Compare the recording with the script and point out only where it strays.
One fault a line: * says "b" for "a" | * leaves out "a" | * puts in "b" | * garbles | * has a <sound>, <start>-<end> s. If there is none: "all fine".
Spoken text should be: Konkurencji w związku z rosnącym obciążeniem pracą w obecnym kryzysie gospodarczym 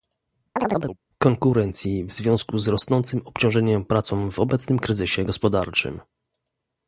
* has a chirp, 0.6-1.0 s